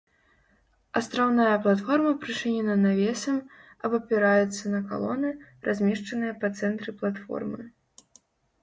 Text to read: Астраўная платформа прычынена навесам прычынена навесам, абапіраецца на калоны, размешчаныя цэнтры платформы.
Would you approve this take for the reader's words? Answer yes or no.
no